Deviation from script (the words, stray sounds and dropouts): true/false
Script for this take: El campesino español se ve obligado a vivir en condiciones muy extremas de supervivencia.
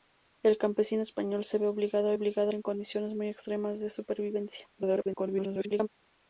true